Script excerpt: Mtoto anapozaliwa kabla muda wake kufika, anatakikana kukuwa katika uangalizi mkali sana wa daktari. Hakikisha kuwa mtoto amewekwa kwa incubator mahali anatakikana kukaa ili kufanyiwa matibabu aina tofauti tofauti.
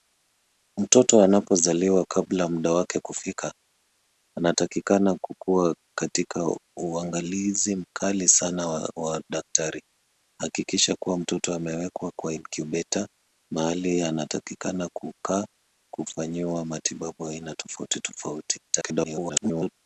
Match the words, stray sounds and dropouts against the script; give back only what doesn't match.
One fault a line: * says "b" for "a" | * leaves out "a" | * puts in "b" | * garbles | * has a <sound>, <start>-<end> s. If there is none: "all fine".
* leaves out "ili"
* garbles